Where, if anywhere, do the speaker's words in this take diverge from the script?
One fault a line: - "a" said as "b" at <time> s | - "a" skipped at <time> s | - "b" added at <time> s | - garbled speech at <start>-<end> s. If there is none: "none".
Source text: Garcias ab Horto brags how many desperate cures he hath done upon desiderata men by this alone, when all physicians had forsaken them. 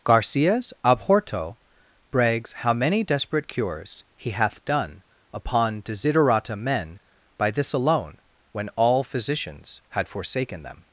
none